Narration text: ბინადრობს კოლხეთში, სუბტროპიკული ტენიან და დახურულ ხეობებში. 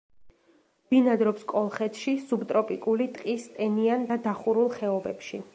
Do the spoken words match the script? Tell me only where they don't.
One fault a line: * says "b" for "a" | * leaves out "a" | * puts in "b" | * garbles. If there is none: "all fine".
* puts in "ტყის"